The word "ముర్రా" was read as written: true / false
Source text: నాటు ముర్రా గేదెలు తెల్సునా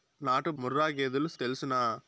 true